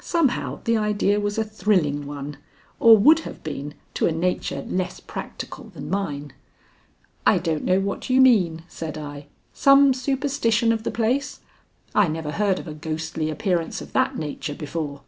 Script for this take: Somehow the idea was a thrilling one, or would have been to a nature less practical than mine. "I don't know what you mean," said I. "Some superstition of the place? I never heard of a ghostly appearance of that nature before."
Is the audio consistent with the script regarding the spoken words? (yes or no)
yes